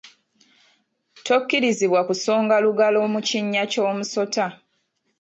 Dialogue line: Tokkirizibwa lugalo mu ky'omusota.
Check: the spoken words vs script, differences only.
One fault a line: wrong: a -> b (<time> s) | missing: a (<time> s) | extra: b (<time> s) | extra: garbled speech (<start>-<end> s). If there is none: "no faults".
extra: kusonga (2.1 s)
extra: kinnya (3.3 s)